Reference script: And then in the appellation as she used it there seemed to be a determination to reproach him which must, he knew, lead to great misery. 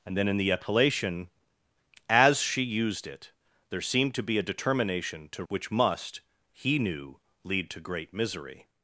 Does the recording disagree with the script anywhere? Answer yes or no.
yes